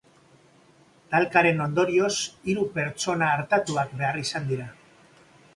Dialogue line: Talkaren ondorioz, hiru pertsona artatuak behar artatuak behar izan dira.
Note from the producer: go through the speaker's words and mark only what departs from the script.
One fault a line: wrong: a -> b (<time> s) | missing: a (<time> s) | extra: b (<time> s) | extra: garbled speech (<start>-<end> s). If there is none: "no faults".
missing: artatuak behar (4.2 s)